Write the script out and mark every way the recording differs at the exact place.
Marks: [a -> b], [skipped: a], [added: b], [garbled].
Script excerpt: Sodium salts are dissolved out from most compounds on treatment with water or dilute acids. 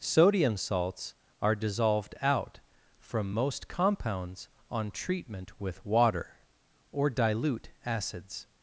Sodium salts are dissolved out from most compounds on treatment with water or dilute acids.